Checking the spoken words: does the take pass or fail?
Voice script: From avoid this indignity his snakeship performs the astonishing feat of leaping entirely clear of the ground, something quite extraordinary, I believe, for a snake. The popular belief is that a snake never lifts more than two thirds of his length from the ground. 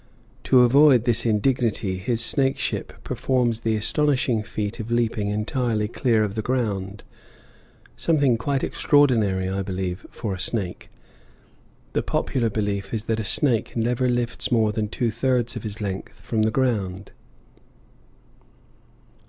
fail